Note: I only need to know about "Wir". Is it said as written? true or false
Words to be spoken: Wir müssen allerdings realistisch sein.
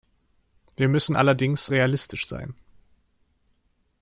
true